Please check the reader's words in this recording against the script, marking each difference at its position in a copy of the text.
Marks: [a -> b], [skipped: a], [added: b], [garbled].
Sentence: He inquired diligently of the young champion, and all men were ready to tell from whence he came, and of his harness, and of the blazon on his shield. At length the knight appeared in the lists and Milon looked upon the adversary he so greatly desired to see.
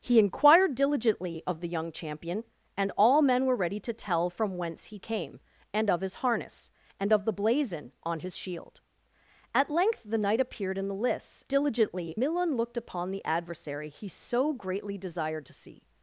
He inquired diligently of the young champion, and all men were ready to tell from whence he came, and of his harness, and of the blazon on his shield. At length the knight appeared in the lists [and -> diligently] Milon looked upon the adversary he so greatly desired to see.